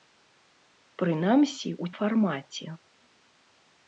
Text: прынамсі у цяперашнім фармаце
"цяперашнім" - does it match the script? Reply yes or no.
no